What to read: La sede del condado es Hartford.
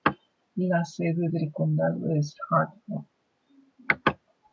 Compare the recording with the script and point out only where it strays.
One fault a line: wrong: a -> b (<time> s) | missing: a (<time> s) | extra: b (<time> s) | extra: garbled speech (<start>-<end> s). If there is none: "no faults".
no faults